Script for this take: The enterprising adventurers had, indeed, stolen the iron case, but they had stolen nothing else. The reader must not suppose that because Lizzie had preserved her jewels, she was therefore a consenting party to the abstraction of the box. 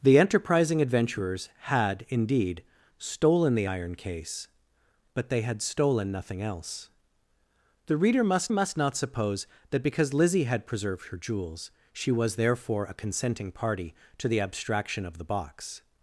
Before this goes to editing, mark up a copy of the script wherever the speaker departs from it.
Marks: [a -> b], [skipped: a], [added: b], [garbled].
The enterprising adventurers had, indeed, stolen the iron case, but they had stolen nothing else. The reader must [added: must] not suppose that because Lizzie had preserved her jewels, she was therefore a consenting party to the abstraction of the box.